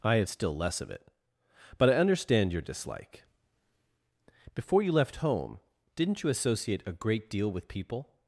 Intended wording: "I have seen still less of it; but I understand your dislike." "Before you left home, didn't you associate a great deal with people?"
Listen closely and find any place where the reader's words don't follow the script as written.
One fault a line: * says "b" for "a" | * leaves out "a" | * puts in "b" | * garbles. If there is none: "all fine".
* leaves out "seen"